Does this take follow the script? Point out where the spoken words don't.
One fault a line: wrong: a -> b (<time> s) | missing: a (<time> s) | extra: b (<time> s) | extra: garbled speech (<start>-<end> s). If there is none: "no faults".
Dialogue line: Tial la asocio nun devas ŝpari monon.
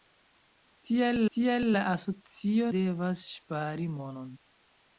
extra: tial (1.4 s)
missing: nun (2.7 s)